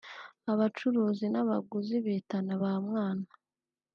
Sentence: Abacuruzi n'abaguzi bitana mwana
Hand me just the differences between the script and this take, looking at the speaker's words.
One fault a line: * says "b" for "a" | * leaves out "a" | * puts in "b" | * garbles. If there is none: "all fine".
* puts in "ba"